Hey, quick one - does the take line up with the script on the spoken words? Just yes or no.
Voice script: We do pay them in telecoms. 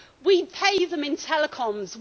yes